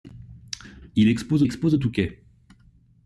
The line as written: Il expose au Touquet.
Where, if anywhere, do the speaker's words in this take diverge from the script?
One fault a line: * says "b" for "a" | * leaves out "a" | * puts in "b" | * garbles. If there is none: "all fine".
* puts in "expose"